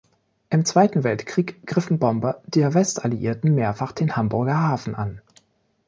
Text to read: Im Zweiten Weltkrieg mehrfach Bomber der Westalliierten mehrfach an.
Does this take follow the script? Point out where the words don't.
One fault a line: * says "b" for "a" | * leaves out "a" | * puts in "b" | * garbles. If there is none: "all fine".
* says "griffen" for "mehrfach"
* puts in "den Hamburger Hafen"